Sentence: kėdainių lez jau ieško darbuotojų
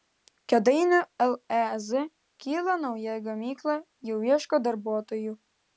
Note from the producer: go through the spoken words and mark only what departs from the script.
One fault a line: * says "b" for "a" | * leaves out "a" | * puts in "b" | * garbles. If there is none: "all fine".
* puts in "kyla nauja gamykla"